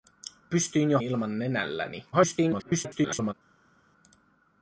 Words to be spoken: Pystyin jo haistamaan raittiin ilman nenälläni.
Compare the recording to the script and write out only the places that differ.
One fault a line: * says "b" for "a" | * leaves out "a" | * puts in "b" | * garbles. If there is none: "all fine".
* leaves out "haistamaan raittiin"
* garbles